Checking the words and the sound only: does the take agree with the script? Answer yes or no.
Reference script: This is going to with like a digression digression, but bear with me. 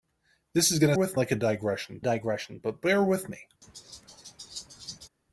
no